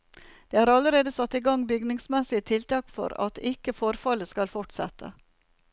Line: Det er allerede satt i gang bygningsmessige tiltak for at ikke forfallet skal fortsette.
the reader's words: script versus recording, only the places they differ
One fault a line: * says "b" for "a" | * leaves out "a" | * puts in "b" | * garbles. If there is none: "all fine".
all fine